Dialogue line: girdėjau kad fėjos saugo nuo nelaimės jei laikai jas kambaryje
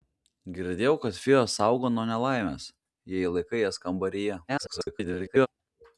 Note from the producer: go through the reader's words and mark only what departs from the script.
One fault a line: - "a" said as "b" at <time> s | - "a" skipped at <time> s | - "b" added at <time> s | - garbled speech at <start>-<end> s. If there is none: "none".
- garbled speech at 4.5-5.5 s